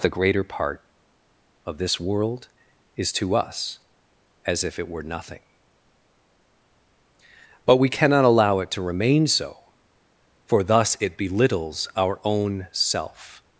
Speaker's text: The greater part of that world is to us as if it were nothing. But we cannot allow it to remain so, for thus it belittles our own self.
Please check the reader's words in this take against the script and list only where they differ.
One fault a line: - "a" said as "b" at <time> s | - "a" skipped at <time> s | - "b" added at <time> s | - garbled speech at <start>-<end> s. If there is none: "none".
- "that" said as "this" at 1.8 s